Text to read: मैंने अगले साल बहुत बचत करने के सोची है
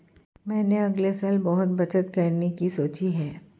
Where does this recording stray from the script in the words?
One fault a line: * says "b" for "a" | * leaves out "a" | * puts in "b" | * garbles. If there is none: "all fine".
* says "की" for "के"